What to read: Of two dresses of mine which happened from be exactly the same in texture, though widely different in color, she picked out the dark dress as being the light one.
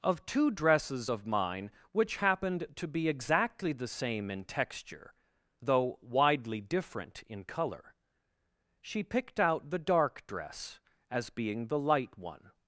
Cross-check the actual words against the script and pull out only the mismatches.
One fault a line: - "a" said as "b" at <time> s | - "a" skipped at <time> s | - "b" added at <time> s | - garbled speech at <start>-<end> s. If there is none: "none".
- "from" said as "to" at 2.8 s